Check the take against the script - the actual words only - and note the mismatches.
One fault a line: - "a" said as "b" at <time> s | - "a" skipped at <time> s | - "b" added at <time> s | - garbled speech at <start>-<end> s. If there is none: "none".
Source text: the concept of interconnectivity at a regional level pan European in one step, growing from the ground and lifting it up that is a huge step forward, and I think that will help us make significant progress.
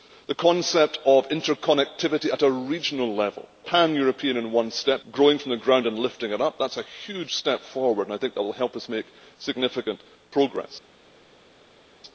none